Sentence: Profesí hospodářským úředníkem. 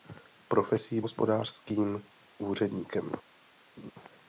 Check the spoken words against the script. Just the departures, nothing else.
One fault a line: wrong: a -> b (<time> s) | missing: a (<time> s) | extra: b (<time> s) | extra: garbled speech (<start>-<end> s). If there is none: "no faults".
no faults